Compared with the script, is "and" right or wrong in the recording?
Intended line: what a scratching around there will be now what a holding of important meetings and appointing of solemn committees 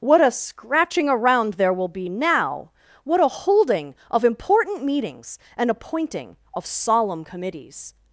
right